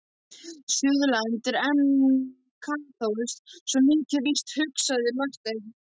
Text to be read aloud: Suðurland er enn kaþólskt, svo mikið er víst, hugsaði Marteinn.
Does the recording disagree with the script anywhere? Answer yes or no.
no